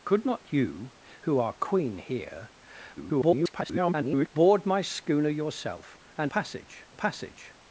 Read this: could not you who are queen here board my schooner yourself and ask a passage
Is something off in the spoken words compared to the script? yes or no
yes